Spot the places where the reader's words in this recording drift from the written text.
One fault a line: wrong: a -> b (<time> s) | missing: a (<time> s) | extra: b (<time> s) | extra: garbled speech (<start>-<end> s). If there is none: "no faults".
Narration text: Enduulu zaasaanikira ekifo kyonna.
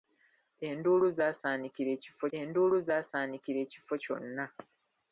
extra: enduulu zaasaanikira ekifo (2.4 s)